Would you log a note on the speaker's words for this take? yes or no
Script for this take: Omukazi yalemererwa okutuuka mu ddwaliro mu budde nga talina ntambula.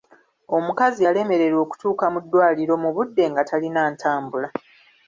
no